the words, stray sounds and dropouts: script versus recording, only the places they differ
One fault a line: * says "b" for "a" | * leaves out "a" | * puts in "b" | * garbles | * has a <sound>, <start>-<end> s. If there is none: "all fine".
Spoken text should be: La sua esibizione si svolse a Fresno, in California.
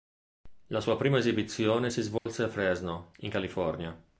* puts in "prima"
* has a dropout, 2.2-2.3 s